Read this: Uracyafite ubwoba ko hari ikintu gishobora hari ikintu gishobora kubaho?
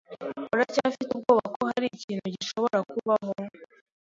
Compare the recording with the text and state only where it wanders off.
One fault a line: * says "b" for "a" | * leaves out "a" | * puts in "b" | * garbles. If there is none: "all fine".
* leaves out "hari ikintu gishobora"